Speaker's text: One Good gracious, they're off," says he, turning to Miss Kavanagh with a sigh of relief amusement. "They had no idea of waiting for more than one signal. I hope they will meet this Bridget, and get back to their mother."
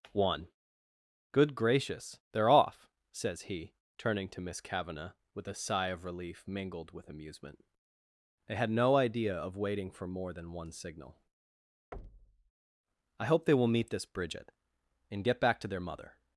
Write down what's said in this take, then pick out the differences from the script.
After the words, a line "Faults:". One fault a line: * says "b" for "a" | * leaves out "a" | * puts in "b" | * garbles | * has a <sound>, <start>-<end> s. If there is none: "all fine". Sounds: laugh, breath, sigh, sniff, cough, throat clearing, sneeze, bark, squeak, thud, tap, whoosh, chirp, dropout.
One Good gracious, they're off," says he, turning to Miss Kavanagh with a sigh of relief mingled with amusement. "They had no idea of waiting for more than one signal. I hope they will meet this Bridget, and get back to their mother."
Faults:
* puts in "mingled with"
* has a thud, 11.9-12.5 s